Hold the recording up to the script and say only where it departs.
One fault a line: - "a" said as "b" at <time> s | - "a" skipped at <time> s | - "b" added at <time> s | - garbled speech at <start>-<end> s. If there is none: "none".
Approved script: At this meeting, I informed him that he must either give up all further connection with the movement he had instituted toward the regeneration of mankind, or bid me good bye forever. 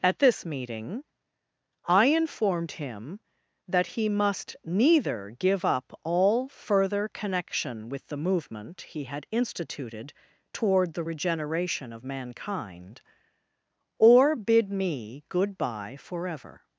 - "either" said as "neither" at 4.6 s